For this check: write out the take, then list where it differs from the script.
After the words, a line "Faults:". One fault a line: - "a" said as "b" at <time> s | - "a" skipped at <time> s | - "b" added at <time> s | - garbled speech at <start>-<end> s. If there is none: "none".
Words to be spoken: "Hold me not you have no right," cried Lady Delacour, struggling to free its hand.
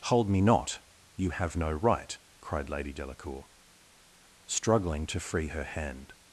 "Hold me not you have no right," cried Lady Delacour, struggling to free her hand.
Faults:
- "its" said as "her" at 5.5 s